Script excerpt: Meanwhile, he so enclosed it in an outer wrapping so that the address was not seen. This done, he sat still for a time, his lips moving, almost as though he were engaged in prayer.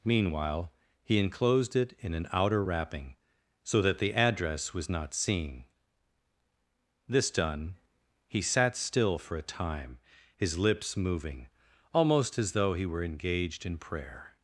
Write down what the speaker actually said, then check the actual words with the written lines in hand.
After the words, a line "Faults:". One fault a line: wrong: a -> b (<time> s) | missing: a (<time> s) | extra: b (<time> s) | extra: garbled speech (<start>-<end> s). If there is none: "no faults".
Meanwhile, he enclosed it in an outer wrapping so that the address was not seen. This done, he sat still for a time, his lips moving, almost as though he were engaged in prayer.
Faults:
missing: so (1.2 s)